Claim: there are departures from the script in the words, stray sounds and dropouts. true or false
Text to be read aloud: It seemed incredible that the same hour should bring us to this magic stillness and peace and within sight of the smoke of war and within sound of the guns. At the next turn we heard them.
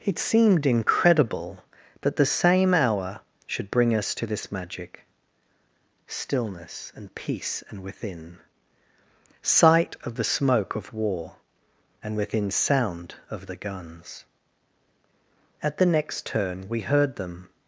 false